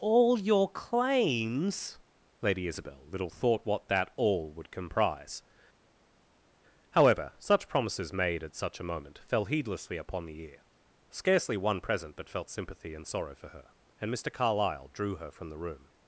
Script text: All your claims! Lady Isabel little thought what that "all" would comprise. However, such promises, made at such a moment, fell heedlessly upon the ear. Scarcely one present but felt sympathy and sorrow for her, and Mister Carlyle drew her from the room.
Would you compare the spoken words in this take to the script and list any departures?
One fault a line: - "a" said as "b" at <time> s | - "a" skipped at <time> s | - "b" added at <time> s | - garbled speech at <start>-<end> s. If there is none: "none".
none